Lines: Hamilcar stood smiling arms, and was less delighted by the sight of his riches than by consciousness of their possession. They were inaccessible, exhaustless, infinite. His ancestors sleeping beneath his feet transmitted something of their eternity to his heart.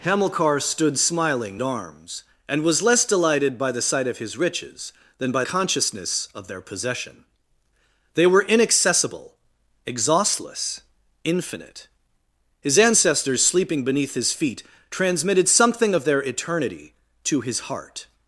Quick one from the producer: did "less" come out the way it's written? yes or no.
yes